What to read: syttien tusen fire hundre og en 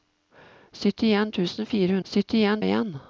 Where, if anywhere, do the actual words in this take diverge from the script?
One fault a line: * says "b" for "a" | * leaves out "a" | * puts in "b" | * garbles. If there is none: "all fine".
* says "syttien" for "hundre"